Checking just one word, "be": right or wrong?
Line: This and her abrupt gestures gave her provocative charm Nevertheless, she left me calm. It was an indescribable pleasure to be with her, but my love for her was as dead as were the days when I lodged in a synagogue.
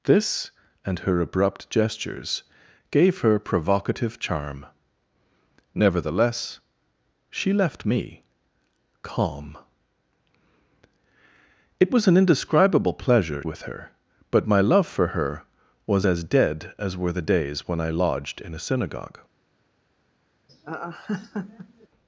wrong